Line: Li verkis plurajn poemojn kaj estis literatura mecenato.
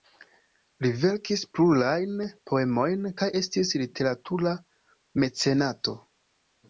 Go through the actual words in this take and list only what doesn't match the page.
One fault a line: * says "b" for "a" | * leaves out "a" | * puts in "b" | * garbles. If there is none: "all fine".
all fine